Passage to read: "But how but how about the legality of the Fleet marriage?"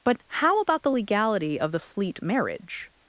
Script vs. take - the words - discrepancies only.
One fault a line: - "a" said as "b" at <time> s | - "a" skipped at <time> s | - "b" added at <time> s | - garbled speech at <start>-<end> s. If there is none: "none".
- "but how" skipped at 0.6 s